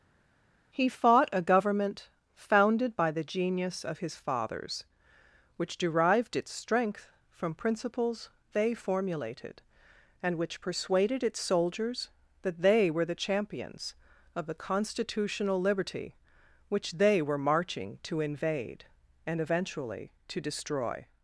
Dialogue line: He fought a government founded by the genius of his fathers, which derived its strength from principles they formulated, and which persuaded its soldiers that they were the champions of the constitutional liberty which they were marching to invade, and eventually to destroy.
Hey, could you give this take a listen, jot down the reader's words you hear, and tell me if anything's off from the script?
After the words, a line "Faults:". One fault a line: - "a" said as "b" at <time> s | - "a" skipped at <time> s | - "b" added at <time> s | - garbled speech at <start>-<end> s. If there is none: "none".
He fought a government founded by the genius of his fathers, which derived its strength from principles they formulated, and which persuaded its soldiers that they were the champions of the constitutional liberty which they were marching to invade, and eventually to destroy.
Faults:
none